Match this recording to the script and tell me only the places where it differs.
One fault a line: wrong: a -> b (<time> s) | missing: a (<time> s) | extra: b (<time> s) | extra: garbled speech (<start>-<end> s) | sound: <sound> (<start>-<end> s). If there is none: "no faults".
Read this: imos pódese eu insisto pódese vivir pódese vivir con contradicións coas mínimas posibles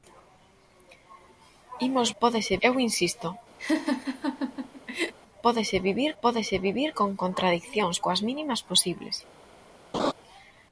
sound: laugh (3.6-5.1 s)
sound: laugh (9.9-10.1 s)